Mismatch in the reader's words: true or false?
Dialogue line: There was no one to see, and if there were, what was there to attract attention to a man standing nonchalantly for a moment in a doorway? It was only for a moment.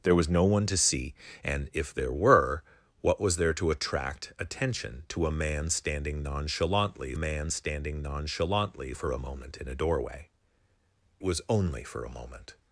true